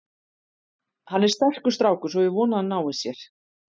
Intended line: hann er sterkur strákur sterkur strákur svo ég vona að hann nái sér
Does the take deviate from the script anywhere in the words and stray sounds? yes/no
yes